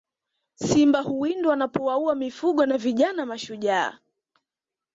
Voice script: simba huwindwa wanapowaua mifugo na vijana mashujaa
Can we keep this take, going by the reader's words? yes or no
yes